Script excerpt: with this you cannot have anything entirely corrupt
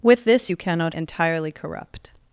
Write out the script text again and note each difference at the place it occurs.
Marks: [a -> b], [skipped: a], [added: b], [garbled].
with this you cannot [skipped: have anything] entirely corrupt